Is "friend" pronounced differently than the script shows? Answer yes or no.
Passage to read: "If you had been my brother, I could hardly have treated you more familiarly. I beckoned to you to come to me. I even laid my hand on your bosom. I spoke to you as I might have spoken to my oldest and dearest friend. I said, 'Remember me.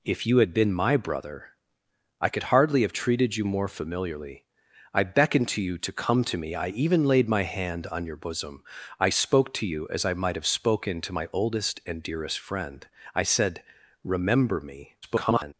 no